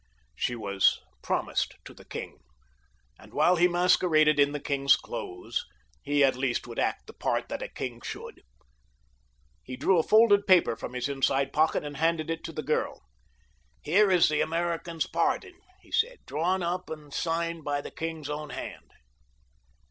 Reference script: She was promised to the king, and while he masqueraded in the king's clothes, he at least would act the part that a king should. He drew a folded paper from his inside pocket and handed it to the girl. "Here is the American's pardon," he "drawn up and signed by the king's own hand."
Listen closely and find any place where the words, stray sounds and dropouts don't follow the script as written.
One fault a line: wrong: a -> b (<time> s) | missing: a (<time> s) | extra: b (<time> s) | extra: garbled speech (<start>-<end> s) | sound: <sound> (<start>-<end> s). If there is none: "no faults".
extra: said (15.9 s)